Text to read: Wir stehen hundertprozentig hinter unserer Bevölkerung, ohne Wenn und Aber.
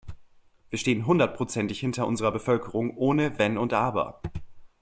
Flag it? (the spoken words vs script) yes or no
no